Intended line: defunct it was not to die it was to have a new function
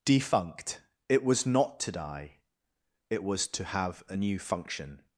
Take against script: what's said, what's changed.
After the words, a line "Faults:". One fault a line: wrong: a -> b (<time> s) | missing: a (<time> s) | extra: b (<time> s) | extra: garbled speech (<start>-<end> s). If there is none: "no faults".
defunct it was not to die it was to have a new function
Faults:
no faults